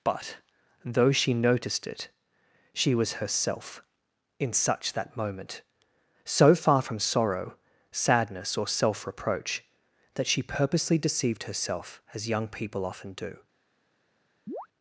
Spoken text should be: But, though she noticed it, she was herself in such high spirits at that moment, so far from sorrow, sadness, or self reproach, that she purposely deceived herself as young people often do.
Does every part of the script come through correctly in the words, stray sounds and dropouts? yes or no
no